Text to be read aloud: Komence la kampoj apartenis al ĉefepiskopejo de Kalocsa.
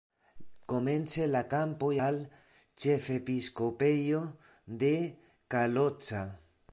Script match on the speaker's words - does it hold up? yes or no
no